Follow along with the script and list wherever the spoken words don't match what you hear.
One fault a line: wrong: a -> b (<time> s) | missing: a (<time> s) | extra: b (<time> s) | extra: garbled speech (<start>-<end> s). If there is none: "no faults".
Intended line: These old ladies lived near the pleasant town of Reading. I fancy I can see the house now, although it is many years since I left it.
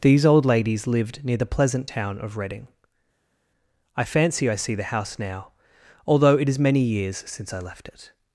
missing: can (4.5 s)